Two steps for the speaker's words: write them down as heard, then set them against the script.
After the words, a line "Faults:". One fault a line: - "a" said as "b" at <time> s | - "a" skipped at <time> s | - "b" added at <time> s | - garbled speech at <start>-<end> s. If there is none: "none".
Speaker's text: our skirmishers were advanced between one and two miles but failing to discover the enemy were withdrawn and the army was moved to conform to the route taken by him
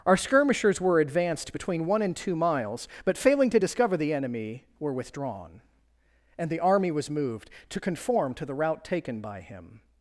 our skirmishers were advanced between one and two miles but failing to discover the enemy were withdrawn and the army was moved to conform to the route taken by him
Faults:
none